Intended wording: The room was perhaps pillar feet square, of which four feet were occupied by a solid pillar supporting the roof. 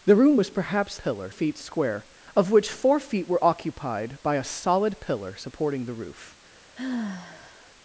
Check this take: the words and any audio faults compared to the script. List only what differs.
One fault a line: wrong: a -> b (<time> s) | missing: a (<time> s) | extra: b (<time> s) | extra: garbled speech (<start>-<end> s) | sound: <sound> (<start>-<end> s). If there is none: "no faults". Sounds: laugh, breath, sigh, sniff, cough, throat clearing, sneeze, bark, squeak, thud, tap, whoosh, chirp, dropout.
sound: sigh (6.7-7.7 s)